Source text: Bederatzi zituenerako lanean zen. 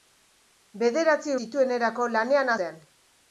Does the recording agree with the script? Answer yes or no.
yes